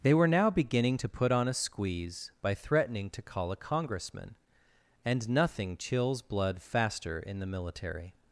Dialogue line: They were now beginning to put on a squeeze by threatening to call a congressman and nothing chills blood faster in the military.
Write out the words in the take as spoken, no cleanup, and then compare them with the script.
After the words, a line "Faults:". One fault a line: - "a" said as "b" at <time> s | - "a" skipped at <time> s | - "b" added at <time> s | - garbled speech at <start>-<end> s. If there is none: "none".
They were now beginning to put on a squeeze by threatening to call a congressman and nothing chills blood faster in the military.
Faults:
none